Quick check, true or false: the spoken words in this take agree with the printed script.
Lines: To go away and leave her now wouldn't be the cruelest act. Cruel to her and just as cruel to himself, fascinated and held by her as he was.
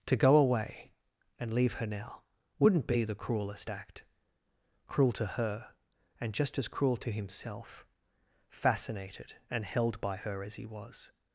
true